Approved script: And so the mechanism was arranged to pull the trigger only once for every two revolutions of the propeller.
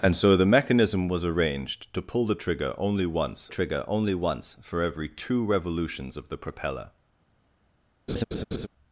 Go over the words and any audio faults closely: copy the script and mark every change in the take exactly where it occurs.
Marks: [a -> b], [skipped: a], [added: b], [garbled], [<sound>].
And so the mechanism was arranged to pull the trigger only once [added: trigger only once] for every two revolutions of the propeller. [laugh]